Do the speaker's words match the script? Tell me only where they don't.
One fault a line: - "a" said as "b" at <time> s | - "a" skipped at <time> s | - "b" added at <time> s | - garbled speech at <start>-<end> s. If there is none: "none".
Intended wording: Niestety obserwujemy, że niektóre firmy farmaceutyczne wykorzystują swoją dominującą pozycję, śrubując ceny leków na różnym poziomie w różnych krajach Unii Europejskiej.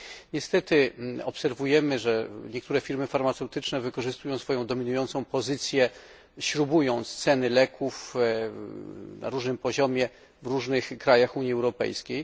none